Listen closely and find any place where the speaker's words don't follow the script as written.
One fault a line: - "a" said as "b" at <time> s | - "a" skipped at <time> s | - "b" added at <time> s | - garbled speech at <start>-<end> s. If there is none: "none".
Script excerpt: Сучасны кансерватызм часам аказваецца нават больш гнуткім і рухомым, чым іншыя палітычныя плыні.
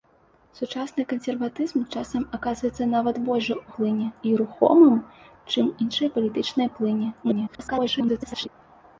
- "гнуткім" said as "плыні" at 3.8 s
- garbled speech at 7.2-8.5 s